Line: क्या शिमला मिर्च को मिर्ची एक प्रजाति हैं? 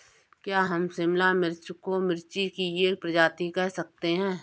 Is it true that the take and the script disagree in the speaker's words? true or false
true